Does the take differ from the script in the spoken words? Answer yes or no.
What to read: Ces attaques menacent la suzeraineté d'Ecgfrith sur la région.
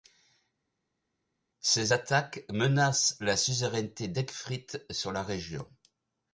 no